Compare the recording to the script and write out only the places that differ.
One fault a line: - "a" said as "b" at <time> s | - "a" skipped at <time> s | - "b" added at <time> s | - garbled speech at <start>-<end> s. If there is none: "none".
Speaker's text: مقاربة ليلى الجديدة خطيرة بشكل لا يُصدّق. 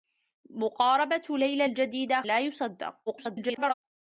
- "خطيرة بشكل" skipped at 2.2 s
- garbled speech at 3.1-3.7 s